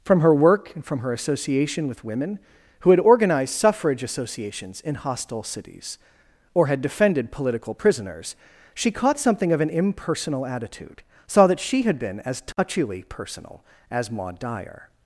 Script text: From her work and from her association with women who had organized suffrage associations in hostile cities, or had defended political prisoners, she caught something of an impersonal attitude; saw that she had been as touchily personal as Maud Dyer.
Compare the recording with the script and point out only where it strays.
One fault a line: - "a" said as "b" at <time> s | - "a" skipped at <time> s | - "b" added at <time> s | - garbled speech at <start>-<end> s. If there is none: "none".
none